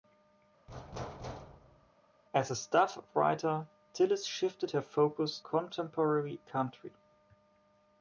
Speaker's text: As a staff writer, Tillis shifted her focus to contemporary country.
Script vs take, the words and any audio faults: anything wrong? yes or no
yes